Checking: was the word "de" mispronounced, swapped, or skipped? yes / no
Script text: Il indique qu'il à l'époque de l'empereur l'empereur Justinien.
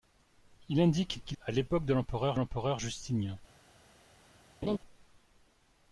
no